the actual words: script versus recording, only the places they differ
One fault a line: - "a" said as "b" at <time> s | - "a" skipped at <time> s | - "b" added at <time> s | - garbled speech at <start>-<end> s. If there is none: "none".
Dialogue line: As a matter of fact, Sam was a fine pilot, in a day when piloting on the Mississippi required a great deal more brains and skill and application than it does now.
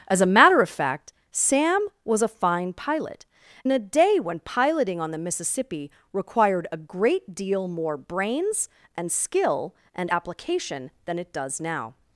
none